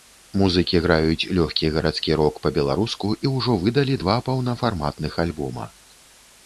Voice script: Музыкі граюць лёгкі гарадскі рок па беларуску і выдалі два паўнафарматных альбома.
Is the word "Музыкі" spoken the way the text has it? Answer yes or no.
yes